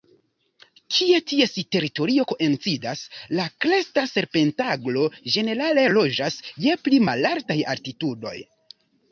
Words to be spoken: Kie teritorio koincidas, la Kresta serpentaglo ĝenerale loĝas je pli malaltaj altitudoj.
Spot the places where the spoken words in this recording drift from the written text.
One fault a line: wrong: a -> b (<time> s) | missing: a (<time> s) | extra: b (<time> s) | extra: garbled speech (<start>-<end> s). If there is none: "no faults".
extra: ties (1.3 s)